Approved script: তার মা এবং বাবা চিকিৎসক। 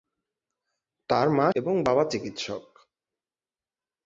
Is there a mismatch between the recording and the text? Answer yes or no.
no